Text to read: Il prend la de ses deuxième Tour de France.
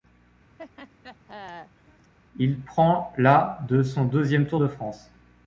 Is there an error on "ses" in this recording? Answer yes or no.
yes